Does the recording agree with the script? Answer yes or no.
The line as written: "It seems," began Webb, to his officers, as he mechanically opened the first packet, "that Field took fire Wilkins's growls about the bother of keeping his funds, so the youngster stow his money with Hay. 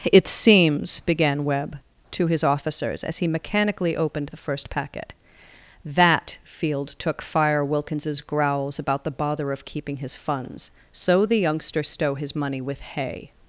yes